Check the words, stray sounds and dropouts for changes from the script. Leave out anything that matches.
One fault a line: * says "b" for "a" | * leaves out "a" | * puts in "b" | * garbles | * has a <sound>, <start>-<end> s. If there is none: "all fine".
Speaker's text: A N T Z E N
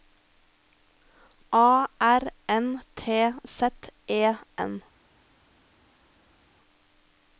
* puts in "R"